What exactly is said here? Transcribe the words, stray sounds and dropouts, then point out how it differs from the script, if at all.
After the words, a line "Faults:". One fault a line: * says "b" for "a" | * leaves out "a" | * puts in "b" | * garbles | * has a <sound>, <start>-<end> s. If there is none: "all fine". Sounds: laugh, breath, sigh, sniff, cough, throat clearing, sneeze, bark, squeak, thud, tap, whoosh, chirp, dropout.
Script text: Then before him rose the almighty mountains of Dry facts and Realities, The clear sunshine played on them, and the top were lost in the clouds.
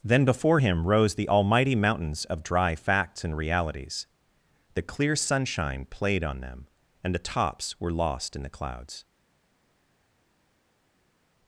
Then before him rose the almighty mountains of Dry facts and Realities, The clear sunshine played on them, and the tops were lost in the clouds.
Faults:
* says "tops" for "top"